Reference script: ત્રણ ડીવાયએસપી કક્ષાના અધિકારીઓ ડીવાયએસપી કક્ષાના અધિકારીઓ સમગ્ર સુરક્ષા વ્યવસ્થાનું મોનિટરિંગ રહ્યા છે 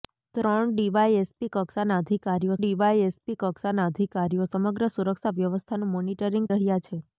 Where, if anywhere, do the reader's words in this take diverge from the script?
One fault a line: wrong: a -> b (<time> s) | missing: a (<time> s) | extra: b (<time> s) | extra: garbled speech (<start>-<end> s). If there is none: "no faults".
no faults